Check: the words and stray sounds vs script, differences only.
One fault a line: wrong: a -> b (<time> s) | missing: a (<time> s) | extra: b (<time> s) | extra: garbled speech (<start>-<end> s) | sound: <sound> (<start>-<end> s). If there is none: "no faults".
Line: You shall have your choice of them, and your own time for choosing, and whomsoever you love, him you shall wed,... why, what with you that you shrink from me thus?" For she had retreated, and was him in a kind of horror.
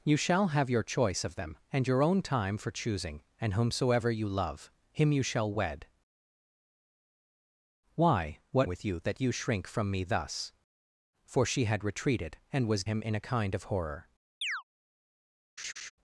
sound: chirp (14.4-14.6 s)
sound: laugh (15.6-15.9 s)